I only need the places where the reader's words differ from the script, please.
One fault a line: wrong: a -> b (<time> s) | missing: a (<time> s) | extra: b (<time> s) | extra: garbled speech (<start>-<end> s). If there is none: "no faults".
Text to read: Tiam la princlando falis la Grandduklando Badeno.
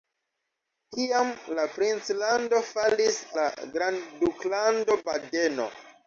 no faults